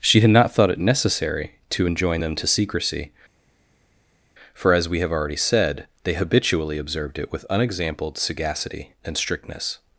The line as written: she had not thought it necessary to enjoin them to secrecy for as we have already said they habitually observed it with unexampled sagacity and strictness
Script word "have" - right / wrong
right